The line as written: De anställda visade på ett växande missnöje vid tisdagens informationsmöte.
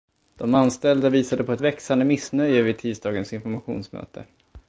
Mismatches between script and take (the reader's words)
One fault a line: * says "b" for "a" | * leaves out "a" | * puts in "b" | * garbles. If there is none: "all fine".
all fine